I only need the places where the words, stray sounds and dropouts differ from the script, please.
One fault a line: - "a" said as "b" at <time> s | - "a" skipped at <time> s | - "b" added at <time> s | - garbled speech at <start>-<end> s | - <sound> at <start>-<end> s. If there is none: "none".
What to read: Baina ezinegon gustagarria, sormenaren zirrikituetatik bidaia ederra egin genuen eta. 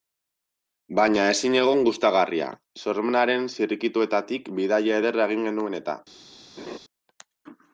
- laugh at 6.6-6.8 s